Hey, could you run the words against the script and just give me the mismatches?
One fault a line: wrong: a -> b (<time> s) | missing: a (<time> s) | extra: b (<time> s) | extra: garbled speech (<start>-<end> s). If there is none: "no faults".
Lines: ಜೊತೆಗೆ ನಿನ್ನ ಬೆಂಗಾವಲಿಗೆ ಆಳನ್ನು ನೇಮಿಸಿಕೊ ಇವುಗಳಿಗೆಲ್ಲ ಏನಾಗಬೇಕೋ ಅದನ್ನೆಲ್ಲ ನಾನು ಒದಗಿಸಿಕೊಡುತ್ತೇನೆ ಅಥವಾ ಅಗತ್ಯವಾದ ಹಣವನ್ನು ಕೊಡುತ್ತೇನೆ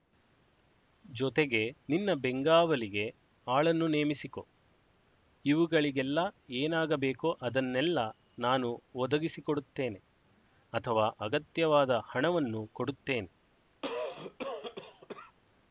no faults